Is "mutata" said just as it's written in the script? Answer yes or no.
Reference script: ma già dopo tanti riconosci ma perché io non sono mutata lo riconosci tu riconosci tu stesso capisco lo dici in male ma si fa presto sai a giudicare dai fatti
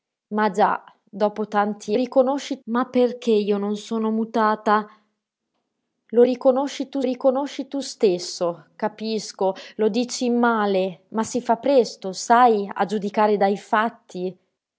yes